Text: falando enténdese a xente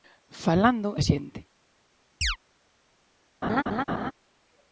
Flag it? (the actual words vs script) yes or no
yes